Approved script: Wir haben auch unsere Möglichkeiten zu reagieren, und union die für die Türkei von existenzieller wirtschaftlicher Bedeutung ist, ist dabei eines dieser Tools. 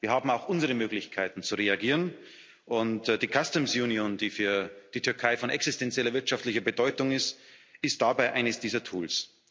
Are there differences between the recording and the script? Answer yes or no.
yes